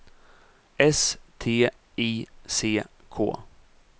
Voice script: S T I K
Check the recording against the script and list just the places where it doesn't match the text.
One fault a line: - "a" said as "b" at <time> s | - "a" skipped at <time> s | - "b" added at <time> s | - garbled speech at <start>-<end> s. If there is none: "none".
- "C" added at 2.5 s